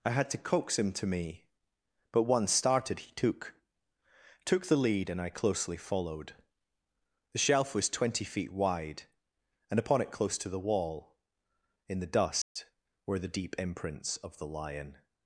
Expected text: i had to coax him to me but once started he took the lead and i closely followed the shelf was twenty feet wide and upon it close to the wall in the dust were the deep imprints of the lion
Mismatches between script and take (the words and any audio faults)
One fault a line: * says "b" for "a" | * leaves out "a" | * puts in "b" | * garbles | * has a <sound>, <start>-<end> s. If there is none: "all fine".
* puts in "took"
* has a dropout, 12.4-12.6 s